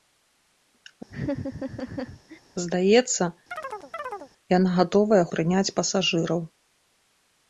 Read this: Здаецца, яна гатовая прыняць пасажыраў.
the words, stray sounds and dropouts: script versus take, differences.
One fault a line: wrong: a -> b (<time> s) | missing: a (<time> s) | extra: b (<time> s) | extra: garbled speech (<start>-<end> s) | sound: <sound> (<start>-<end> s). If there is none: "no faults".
sound: laugh (1.1-2.4 s)
sound: chirp (3.5-4.3 s)